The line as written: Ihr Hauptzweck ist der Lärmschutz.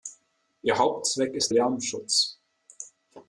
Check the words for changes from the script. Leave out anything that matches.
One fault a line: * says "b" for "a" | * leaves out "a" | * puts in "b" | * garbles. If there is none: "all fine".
* leaves out "der"